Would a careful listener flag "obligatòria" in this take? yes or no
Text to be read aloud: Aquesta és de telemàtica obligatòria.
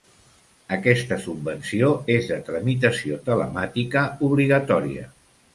no